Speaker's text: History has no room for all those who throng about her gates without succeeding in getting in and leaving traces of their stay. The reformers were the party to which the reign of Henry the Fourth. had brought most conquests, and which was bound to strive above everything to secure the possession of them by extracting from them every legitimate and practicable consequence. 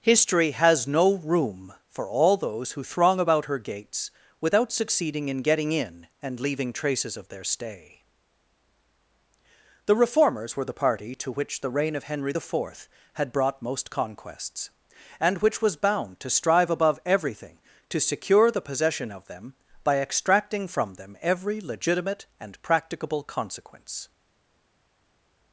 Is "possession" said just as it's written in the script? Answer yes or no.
yes